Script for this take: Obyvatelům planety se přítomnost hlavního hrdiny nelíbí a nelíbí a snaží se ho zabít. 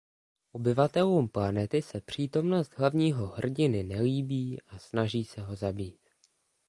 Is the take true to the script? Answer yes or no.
no